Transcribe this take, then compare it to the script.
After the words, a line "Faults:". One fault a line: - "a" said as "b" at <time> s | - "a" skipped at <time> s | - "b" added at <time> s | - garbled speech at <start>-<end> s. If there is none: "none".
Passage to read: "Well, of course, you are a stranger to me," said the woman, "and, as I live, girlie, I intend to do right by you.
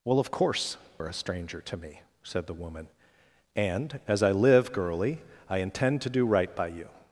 "Well, of course, are a stranger to me," said the woman, "and, as I live, girlie, I intend to do right by you.
Faults:
- "you" skipped at 0.8 s